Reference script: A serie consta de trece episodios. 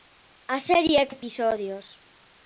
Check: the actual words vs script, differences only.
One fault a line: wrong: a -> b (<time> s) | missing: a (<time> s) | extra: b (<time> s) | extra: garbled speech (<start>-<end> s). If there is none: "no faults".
missing: consta de trece (1.1 s)